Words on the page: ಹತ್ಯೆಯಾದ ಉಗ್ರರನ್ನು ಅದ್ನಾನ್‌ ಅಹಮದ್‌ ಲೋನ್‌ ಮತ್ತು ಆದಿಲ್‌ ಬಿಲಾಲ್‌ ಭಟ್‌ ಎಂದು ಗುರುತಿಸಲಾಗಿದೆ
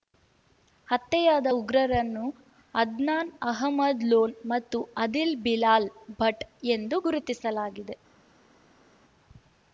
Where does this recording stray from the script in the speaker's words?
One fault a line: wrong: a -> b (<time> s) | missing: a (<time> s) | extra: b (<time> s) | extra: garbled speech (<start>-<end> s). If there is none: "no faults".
no faults